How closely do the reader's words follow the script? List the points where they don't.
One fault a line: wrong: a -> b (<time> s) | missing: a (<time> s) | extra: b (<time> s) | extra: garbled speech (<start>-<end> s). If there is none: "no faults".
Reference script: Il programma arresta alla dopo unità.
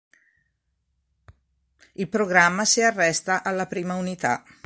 extra: si (2.6 s)
wrong: dopo -> prima (3.7 s)